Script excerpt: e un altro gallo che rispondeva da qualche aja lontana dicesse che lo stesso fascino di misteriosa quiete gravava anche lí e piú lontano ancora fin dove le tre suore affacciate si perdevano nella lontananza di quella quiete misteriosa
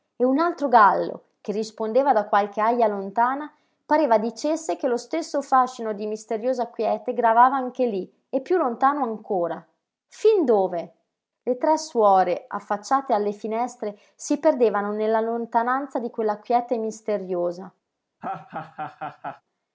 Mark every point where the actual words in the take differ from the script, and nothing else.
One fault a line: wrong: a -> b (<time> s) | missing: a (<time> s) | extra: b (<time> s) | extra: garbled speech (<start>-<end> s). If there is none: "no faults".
extra: pareva (3.9 s)
extra: alle finestre (13.1 s)